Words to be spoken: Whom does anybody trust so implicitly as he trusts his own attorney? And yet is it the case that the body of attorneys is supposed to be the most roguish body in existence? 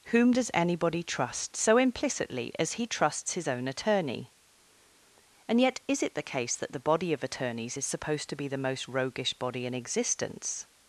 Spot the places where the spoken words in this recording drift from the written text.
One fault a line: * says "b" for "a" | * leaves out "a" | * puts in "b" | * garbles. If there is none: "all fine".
all fine